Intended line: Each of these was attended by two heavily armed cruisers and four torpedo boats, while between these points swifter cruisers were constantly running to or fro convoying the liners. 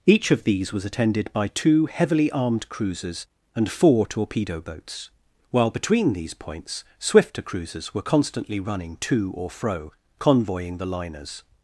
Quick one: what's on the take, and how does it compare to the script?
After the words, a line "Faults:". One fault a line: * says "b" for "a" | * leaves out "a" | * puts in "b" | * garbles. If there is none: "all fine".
Each of these was attended by two heavily armed cruisers and four torpedo boats, while between these points swifter cruisers were constantly running to or fro convoying the liners.
Faults:
all fine